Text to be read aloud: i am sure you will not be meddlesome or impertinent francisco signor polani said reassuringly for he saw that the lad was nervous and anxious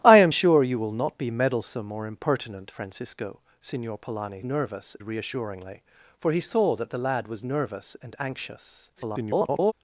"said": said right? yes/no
no